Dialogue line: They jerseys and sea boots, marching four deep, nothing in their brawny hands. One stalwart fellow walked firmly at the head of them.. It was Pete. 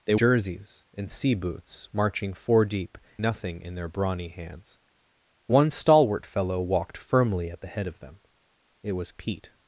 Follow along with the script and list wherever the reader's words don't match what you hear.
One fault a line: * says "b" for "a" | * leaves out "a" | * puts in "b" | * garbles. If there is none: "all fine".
all fine